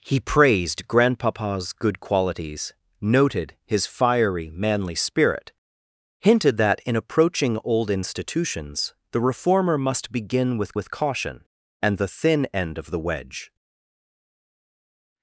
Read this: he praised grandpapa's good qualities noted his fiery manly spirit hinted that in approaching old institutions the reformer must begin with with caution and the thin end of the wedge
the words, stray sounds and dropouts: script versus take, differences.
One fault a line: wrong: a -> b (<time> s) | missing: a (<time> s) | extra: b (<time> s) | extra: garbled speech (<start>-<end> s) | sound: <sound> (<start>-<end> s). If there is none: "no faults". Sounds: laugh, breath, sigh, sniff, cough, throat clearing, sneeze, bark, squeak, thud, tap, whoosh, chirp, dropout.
no faults